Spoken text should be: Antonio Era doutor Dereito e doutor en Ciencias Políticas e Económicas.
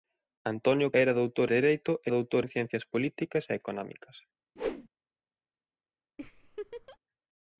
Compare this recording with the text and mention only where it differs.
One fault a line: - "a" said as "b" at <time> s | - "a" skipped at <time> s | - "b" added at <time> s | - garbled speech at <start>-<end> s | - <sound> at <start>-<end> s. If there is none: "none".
- whoosh at 4.6-4.9 s
- laugh at 6.2-7.0 s